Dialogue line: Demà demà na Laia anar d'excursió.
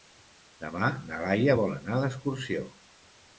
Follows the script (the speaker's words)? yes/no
no